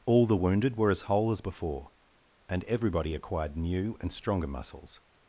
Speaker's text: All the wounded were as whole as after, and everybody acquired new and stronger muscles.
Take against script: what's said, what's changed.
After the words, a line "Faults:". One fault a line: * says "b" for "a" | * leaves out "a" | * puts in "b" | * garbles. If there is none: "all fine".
All the wounded were as whole as before, and everybody acquired new and stronger muscles.
Faults:
* says "before" for "after"